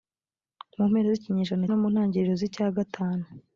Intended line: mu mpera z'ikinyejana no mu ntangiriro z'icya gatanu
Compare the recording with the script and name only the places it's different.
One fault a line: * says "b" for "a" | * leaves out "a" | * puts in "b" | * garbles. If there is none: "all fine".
all fine